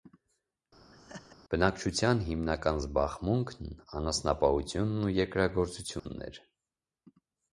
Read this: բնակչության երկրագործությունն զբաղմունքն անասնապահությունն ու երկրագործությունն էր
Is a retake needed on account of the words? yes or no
yes